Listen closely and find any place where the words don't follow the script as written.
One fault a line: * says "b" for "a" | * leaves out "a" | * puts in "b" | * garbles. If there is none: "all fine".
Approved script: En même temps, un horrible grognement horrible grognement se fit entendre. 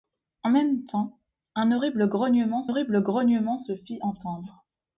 all fine